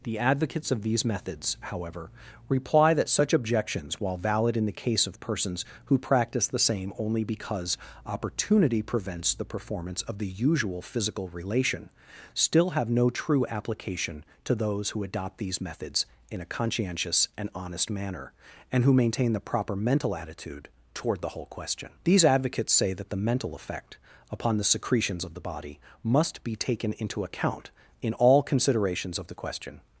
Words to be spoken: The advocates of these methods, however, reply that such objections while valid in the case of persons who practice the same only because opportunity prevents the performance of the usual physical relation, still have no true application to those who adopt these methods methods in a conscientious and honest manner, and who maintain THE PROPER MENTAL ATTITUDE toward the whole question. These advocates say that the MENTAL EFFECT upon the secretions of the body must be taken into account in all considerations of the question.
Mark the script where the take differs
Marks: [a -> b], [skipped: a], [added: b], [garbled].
The advocates of these methods, however, reply that such objections while valid in the case of persons who practice the same only because opportunity prevents the performance of the usual physical relation, still have no true application to those who adopt these methods [skipped: methods] in a conscientious and honest manner, and who maintain THE PROPER MENTAL ATTITUDE toward the whole question. These advocates say that the MENTAL EFFECT upon the secretions of the body must be taken into account in all considerations of the question.